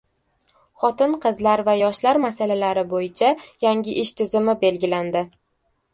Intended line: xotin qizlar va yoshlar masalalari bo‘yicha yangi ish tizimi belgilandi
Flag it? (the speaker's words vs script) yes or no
no